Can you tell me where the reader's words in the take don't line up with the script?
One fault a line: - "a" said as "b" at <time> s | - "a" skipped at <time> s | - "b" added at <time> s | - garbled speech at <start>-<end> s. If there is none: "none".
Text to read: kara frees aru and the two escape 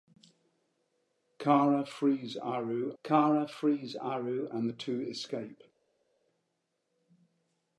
- "kara frees aru" added at 3.0 s